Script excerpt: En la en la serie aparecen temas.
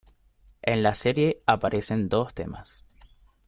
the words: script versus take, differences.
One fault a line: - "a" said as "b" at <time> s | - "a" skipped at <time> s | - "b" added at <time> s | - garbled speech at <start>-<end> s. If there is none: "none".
- "en la" skipped at 0.9 s
- "dos" added at 2.1 s